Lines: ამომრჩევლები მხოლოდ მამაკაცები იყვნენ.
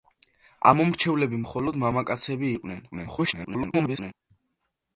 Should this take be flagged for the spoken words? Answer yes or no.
yes